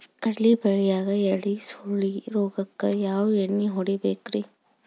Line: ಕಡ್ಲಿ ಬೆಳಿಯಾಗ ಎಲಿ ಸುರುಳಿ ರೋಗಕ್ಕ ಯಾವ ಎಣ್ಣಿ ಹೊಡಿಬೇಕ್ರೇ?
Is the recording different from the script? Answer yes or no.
no